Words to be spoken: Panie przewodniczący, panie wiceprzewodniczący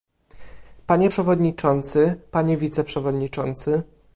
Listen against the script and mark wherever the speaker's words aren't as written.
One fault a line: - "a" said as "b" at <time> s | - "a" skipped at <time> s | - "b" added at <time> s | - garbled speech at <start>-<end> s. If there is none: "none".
none